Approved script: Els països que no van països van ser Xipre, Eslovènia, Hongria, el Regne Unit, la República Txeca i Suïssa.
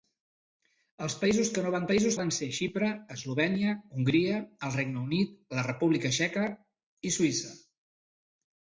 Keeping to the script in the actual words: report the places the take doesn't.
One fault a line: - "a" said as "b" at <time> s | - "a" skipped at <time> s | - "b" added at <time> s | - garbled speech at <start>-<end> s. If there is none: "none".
none